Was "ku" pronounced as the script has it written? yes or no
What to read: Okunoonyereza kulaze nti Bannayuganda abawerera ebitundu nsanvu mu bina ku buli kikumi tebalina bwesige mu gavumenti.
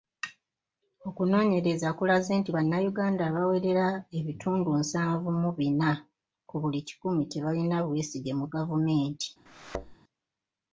yes